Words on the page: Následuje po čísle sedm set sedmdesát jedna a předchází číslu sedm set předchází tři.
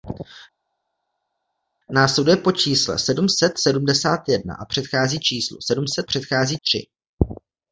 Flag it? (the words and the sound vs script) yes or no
no